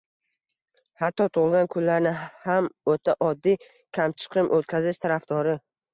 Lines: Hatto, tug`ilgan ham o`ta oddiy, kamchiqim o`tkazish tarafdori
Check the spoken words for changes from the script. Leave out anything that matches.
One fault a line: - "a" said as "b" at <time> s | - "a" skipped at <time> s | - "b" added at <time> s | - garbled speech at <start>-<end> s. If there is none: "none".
- "kunlarni" added at 1.8 s